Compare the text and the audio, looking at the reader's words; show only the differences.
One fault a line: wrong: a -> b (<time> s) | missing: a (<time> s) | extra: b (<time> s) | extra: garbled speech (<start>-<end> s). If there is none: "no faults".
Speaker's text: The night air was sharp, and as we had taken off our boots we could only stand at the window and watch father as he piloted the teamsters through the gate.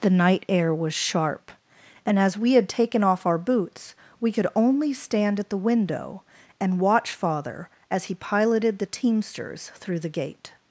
no faults